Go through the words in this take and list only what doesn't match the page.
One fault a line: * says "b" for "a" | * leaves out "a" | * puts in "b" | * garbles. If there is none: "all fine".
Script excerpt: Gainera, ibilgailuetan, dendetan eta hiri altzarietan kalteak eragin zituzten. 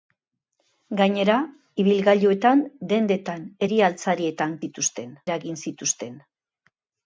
* leaves out "eta"
* says "zituzten" for "kalteak"